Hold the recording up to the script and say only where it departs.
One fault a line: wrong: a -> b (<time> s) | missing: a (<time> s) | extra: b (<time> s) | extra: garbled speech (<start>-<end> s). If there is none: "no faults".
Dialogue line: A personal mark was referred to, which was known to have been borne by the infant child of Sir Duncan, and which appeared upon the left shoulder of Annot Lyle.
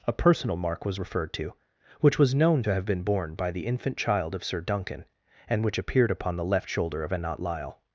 no faults